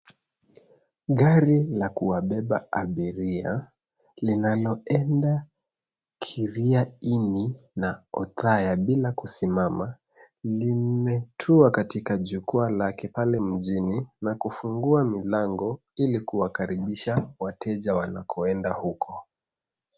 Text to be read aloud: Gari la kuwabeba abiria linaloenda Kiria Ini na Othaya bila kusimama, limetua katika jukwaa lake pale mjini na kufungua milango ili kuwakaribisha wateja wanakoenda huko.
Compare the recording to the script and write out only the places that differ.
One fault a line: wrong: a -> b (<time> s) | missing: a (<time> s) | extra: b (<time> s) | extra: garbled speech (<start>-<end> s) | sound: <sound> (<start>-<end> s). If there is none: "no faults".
no faults